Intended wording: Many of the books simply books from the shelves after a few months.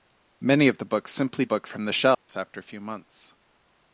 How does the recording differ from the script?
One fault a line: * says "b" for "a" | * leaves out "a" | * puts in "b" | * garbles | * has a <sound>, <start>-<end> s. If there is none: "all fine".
* has a dropout, 2.1-2.3 s